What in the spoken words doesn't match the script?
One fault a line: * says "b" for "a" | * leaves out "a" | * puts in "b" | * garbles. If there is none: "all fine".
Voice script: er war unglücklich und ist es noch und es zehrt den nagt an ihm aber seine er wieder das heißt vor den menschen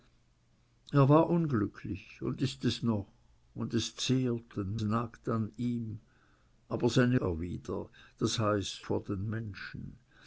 all fine